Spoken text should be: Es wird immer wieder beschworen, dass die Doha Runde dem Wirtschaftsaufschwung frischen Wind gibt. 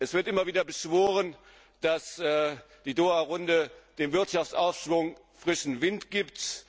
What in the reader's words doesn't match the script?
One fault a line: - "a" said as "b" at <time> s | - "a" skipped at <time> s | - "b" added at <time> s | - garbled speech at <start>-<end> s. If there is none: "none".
none